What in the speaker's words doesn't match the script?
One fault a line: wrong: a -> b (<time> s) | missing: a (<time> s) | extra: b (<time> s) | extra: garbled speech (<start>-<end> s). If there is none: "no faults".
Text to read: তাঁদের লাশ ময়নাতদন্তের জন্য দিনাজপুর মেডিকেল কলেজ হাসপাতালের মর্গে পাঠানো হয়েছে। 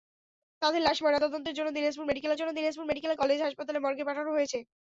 extra: জন্য দিনাজপুর মেডিকেল (2.4 s)